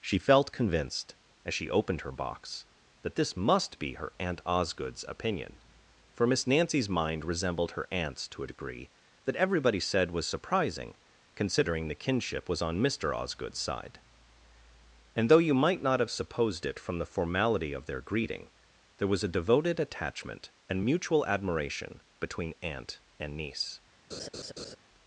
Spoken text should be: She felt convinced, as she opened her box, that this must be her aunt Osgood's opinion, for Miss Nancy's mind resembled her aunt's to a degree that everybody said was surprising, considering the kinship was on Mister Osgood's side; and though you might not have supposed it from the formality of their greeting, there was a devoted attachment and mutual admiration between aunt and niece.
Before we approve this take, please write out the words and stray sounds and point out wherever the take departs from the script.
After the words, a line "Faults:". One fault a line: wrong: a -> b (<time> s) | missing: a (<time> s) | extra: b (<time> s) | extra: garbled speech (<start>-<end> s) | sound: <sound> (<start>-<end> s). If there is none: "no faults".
She felt convinced, as she opened her box, that this must be her aunt Osgood's opinion, for Miss Nancy's mind resembled her aunt's to a degree that everybody said was surprising, considering the kinship was on Mister Osgood's side; and though you might not have supposed it from the formality of their greeting, there was a devoted attachment and mutual admiration between aunt and niece.
Faults:
sound: laugh (24.1-24.8 s)